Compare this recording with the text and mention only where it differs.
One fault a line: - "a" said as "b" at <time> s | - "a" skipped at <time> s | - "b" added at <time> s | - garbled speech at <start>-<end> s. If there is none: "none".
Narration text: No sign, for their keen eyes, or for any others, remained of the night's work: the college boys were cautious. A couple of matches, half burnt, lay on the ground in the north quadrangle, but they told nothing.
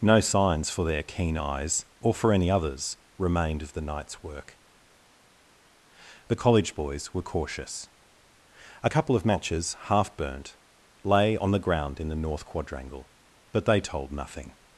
- "sign" said as "signs" at 0.2 s